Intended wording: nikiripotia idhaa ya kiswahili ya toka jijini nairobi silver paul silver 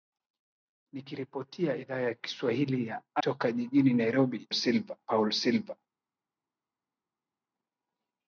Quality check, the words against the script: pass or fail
pass